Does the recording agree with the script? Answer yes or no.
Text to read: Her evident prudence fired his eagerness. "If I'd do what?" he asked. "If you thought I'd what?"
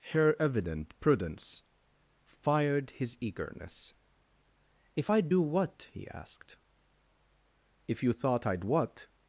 yes